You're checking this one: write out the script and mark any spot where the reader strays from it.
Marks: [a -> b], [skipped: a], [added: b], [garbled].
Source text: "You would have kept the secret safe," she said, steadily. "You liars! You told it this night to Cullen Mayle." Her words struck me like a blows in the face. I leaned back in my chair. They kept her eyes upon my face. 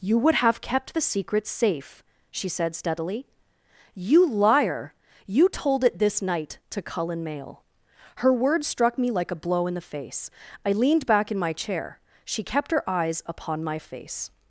"You would have kept the secret safe," she said, steadily. "You [liars! -> liar] You told it this night to Cullen Mayle." Her words struck me like a [blows -> blow] in the face. I leaned back in my chair. [They -> She] kept her eyes upon my face.